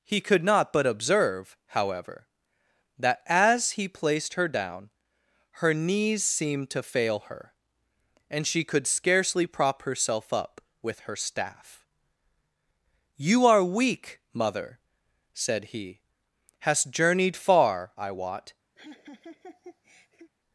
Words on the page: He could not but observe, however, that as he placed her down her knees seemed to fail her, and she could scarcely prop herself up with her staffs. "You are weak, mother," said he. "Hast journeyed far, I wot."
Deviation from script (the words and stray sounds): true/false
true